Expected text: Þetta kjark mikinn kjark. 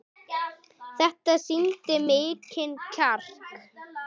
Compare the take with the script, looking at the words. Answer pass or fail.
fail